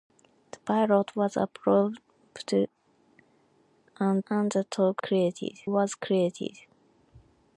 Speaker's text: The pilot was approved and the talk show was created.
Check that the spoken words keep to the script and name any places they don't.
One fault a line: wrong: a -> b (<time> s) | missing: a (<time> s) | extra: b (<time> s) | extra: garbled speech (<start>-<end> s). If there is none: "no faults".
extra: and (4.3 s)
wrong: show -> created (5.0 s)